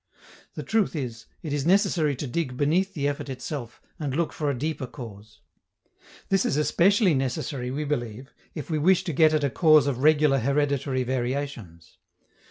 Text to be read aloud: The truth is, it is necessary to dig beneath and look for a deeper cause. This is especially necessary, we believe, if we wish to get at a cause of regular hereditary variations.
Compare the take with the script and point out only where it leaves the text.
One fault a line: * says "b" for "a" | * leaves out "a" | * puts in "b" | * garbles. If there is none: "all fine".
* puts in "the effort itself"